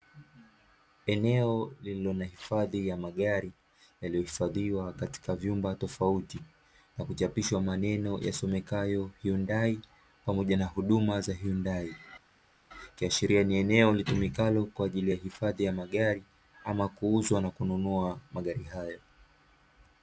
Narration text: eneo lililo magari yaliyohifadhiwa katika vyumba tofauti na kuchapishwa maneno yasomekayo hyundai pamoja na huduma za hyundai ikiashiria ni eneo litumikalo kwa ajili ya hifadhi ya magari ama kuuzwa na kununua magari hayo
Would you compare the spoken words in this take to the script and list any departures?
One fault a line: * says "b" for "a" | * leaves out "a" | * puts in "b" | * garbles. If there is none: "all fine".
* puts in "na hifadhi ya"